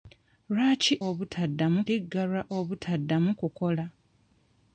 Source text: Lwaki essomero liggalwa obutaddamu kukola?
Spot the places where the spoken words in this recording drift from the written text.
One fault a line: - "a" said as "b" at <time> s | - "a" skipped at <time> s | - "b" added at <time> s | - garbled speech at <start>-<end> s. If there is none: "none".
- "essomero" said as "obutaddamu" at 1.1 s